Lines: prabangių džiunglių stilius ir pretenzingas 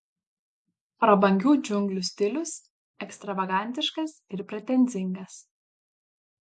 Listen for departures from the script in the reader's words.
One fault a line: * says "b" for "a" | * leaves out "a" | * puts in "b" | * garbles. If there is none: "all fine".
* puts in "ekstravagantiškas"